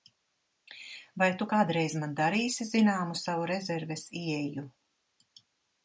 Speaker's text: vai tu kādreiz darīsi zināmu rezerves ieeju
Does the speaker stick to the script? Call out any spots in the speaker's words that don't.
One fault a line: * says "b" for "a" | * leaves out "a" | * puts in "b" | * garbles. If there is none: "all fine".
* puts in "man"
* puts in "savu"